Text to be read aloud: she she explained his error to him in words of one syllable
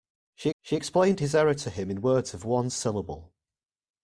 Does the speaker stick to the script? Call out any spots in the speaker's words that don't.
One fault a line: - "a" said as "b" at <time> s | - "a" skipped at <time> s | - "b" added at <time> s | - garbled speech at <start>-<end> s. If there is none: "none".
none